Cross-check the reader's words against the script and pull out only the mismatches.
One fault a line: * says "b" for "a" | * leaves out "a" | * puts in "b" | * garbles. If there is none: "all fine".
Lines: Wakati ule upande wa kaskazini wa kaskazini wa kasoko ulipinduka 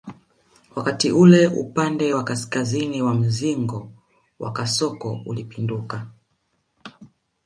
* says "mzingo" for "kaskazini"